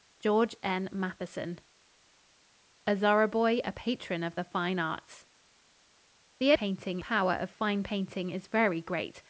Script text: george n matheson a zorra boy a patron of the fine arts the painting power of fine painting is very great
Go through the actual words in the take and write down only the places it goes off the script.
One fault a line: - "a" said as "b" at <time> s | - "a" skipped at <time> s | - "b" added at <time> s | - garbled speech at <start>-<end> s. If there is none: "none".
none